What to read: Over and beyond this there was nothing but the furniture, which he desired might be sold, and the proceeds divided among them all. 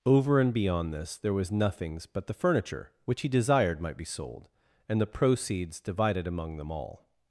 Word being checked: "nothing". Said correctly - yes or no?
no